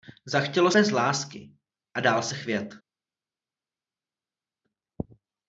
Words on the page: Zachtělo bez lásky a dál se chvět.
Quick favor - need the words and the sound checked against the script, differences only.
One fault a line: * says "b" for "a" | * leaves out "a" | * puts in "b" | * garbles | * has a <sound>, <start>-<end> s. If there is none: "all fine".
all fine